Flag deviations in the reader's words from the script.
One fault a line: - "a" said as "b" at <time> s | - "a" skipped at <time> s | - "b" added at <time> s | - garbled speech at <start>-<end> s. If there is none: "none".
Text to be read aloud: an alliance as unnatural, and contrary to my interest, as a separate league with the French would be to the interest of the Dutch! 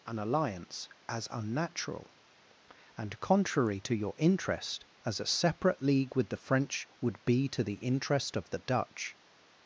- "my" said as "your" at 4.0 s